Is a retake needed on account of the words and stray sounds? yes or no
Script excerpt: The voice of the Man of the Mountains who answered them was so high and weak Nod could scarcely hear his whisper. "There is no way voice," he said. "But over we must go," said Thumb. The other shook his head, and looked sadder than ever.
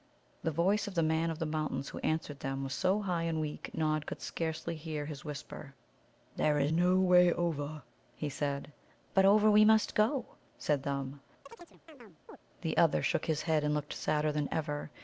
yes